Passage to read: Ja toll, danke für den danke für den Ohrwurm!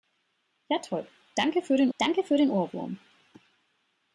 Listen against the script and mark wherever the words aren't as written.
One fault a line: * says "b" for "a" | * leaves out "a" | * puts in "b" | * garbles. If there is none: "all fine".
all fine